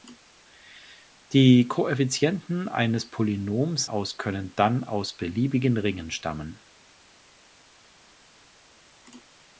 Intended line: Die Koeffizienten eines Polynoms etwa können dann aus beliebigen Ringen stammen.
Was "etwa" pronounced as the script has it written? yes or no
no